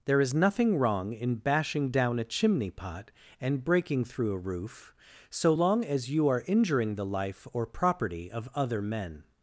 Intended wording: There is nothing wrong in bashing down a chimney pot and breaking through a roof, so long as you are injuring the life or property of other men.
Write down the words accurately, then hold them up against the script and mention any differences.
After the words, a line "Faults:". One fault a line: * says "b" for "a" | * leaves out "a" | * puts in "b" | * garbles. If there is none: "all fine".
There is nothing wrong in bashing down a chimney pot and breaking through a roof, so long as you are injuring the life or property of other men.
Faults:
all fine